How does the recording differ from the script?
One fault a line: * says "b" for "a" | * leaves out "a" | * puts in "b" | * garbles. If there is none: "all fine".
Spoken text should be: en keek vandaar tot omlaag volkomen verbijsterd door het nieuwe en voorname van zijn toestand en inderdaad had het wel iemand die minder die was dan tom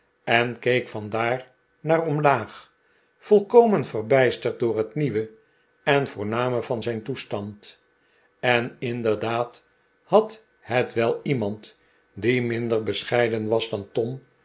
* says "naar" for "tot"
* says "bescheiden" for "die"